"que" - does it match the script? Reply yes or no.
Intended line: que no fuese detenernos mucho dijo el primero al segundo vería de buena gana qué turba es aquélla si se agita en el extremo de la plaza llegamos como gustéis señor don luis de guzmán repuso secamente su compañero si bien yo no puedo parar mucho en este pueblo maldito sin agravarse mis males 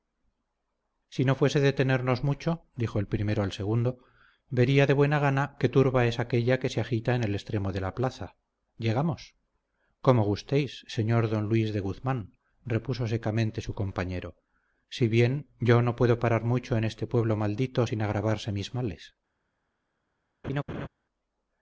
no